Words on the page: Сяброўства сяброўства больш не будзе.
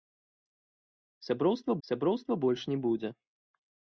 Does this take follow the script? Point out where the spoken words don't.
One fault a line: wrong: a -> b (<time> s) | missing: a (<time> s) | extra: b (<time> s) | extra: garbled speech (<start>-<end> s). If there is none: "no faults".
no faults